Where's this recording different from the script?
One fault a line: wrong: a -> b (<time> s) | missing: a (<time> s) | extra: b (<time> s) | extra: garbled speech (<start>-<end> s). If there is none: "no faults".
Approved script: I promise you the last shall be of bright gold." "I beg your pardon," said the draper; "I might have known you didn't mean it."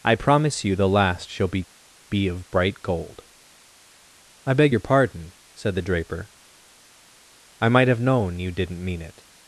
extra: be (2.1 s)